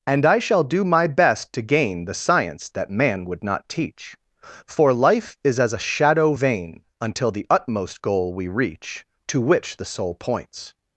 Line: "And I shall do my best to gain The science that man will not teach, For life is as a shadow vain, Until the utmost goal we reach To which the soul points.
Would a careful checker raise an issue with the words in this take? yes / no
yes